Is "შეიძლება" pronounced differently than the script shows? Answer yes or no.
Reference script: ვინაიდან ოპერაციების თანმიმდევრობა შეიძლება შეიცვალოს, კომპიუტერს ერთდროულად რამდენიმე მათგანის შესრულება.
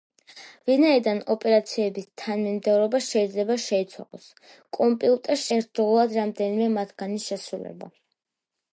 no